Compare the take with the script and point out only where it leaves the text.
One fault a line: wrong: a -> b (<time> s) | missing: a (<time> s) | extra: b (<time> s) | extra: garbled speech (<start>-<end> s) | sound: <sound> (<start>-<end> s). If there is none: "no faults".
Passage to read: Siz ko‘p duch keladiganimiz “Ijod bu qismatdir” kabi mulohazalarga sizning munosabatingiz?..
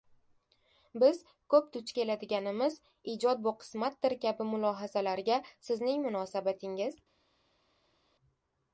wrong: Siz -> Biz (1.0 s)